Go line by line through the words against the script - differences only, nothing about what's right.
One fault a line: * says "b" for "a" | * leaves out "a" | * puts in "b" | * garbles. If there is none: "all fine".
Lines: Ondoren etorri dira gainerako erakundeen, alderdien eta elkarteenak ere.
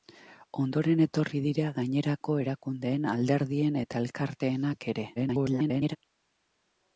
* garbles